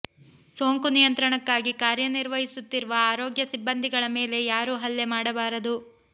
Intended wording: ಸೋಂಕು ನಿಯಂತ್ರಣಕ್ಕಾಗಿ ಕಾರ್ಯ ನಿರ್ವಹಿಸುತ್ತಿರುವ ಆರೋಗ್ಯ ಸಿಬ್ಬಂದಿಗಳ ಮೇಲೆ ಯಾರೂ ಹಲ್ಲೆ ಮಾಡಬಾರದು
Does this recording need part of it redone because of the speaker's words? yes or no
no